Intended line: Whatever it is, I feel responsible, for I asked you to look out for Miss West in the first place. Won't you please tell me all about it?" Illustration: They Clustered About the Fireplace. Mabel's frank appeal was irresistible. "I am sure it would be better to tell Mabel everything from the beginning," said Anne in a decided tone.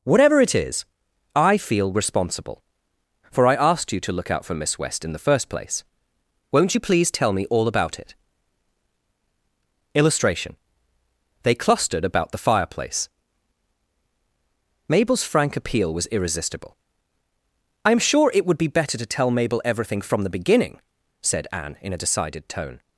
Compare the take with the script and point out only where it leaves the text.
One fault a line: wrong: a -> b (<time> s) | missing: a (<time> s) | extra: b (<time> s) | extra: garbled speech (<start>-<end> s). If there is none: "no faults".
no faults